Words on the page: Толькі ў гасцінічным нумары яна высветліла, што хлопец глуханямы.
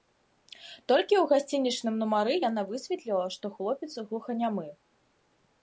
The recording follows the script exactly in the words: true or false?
true